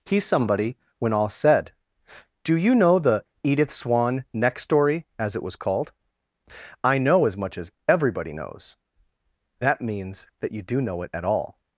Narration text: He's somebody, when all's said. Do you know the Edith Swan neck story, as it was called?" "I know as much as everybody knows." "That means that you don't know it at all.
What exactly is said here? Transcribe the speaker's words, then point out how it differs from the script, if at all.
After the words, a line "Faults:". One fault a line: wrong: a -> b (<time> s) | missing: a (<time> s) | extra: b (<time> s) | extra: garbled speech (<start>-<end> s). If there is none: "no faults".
He's somebody, when all's said. Do you know the Edith Swan neck story, as it was called?" "I know as much as everybody knows." "That means that you do know it at all.
Faults:
wrong: don't -> do (10.6 s)